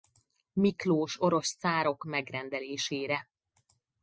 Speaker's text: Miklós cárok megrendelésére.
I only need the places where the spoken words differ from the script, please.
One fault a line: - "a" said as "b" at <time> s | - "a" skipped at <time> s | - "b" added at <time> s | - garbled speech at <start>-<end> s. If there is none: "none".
- "orosz" added at 1.2 s